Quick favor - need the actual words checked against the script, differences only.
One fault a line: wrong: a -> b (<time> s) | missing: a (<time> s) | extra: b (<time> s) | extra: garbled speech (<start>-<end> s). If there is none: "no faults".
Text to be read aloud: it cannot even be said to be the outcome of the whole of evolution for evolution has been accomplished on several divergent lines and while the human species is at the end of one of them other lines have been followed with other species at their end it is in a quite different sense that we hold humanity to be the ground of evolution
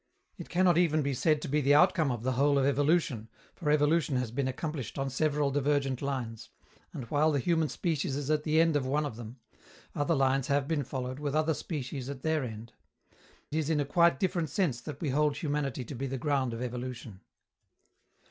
missing: it (12.7 s)